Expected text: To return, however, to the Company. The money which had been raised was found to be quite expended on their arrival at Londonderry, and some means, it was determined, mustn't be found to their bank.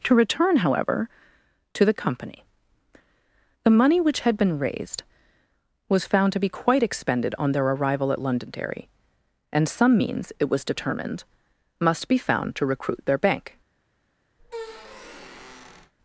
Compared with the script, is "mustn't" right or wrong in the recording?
wrong